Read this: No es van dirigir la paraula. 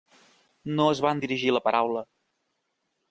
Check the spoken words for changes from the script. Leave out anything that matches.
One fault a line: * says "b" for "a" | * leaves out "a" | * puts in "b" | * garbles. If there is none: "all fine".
all fine